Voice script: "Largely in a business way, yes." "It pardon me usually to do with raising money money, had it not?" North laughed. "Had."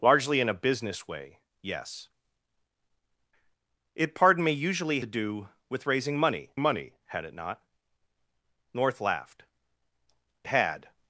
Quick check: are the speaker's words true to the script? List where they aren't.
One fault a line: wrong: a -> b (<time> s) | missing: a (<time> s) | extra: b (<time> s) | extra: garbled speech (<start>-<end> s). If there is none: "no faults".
no faults